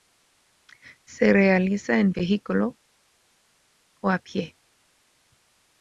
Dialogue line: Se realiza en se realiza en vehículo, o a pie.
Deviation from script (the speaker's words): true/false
true